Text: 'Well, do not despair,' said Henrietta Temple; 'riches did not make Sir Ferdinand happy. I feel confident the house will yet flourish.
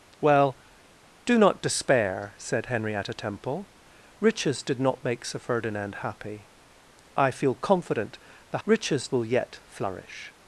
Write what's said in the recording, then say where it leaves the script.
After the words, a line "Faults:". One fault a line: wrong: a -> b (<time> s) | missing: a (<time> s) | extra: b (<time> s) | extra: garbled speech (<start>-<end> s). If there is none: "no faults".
'Well, do not despair,' said Henrietta Temple; 'riches did not make Sir Ferdinand happy. I feel confident the riches will yet flourish.
Faults:
wrong: house -> riches (8.6 s)